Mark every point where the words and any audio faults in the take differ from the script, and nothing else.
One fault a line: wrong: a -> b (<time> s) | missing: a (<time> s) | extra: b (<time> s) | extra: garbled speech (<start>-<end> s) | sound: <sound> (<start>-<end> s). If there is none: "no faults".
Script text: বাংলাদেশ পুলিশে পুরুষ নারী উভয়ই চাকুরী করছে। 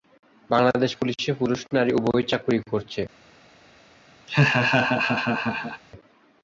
sound: laugh (4.3-5.8 s)